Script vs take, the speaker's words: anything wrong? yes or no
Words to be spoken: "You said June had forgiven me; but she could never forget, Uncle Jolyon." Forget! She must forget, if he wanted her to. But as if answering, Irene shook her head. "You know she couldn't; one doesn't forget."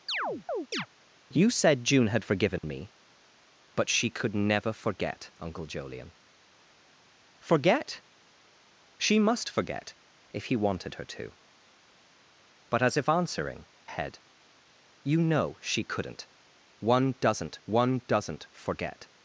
yes